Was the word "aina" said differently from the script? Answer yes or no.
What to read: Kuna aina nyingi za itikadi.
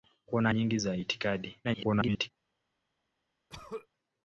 yes